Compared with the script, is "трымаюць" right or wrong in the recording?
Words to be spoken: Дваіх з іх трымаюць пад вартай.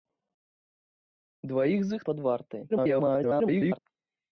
wrong